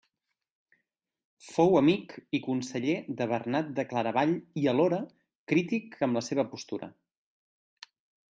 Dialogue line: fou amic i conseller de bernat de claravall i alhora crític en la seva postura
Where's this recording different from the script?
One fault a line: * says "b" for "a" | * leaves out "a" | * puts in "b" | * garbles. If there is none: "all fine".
* says "amb" for "en"